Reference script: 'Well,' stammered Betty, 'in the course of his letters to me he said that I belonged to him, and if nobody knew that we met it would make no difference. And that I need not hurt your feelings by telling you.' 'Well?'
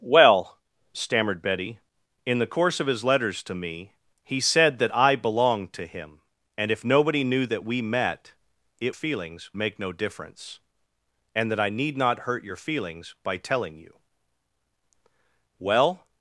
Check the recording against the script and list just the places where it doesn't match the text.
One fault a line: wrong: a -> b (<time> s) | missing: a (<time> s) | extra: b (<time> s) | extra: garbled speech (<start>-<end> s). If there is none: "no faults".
wrong: would -> feelings (8.9 s)